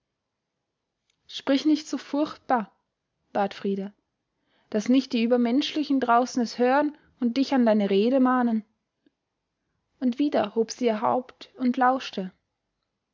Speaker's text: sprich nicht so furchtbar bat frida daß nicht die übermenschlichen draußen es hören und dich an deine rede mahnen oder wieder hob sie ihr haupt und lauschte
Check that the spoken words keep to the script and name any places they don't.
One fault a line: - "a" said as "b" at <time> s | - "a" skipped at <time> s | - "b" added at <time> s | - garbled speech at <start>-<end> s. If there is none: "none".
- "oder" said as "und" at 10.0 s